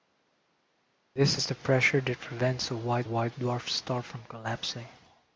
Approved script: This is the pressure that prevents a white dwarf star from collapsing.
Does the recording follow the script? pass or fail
fail